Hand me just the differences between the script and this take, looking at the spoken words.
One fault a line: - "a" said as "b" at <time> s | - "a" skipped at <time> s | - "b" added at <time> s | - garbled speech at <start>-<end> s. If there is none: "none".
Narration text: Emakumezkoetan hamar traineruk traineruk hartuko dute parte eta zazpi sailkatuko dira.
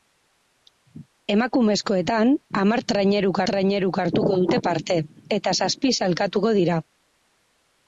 none